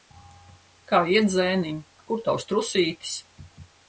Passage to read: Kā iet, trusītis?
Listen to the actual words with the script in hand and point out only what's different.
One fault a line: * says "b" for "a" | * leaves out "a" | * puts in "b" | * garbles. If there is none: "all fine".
* puts in "zēniņ Kur tavs"